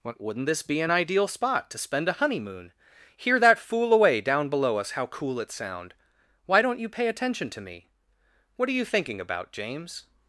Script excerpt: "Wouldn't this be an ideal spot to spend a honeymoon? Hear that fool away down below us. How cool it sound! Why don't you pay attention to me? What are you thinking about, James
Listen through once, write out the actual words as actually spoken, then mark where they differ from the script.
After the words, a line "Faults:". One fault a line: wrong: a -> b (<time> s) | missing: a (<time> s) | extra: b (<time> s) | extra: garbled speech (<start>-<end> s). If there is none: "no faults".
"Wouldn't this be an ideal spot to spend a honeymoon? Hear that fool away down below us. How cool it sound! Why don't you pay attention to me? What are you thinking about, James
Faults:
no faults